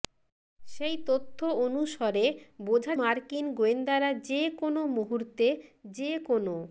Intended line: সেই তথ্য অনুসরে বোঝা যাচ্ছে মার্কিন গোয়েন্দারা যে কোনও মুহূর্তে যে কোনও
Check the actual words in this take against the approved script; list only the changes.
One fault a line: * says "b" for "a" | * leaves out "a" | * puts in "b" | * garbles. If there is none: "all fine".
* leaves out "যাচ্ছে"